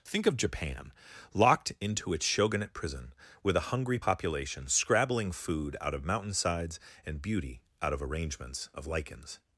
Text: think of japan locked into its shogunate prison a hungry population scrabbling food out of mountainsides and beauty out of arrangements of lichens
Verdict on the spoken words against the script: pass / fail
fail